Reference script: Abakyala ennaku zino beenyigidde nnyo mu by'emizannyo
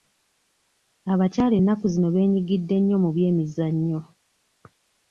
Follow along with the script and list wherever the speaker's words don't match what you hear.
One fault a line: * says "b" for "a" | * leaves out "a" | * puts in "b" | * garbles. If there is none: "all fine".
all fine